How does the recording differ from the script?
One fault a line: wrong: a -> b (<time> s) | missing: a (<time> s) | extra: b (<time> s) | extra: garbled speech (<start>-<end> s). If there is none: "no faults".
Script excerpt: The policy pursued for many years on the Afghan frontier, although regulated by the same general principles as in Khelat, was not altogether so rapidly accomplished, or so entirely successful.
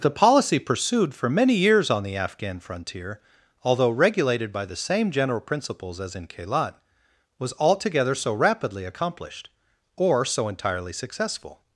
missing: not (7.5 s)